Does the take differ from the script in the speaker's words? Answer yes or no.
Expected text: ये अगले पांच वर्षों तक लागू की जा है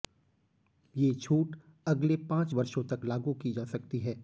yes